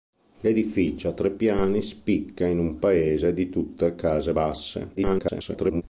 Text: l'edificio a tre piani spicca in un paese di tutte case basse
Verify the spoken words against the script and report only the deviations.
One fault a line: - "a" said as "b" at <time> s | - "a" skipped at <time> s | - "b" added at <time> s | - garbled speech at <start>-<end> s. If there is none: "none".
- garbled speech at 5.0-5.8 s